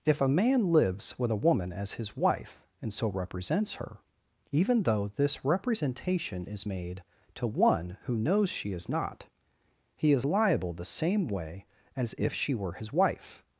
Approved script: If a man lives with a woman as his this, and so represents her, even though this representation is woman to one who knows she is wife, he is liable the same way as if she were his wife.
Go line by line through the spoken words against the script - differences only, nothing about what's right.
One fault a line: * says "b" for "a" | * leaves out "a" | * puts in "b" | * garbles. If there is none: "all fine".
* says "wife" for "this"
* says "made" for "woman"
* says "not" for "wife"